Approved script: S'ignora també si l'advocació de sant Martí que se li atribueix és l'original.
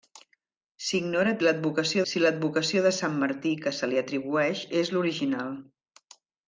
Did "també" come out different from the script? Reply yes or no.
yes